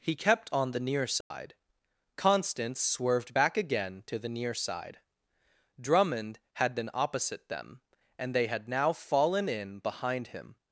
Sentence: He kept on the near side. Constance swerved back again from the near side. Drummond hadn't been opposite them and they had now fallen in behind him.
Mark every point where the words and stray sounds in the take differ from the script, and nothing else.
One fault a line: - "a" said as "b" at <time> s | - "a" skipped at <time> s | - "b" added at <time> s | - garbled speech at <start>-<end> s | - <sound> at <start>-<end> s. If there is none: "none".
- dropout at 1.2-1.3 s
- "from" said as "to" at 4.1 s
- "hadn't" said as "had" at 6.5 s